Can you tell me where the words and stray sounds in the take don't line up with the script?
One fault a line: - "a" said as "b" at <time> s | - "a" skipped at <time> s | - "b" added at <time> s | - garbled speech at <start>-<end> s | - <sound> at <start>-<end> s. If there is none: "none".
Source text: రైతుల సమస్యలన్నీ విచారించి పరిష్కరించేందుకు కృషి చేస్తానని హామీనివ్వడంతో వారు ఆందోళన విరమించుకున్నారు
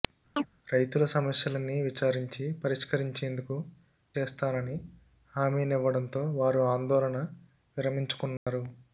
- chirp at 0.4-0.5 s
- "కృషి" skipped at 3.6 s
- dropout at 8.4-8.5 s